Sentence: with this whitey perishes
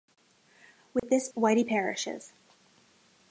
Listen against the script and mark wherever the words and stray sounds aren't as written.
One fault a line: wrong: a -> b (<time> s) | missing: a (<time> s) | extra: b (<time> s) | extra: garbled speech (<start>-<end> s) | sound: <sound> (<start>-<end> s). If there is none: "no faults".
sound: dropout (1.0-1.0 s)